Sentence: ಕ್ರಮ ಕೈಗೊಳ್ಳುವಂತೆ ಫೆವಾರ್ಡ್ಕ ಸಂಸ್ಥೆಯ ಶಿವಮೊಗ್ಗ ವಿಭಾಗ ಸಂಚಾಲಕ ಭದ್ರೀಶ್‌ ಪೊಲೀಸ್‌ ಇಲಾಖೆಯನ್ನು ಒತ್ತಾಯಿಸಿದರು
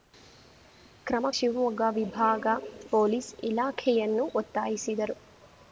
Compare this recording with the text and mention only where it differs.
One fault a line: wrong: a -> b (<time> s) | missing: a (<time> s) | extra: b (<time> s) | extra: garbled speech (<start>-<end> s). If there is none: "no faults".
missing: ಕೈಗೊಳ್ಳುವಂತೆ ಫೆವಾರ್ಡ್ಕ ಸಂಸ್ಥೆಯ (1.3 s)
missing: ಸಂಚಾಲಕ ಭದ್ರೀಶ್ (2.5 s)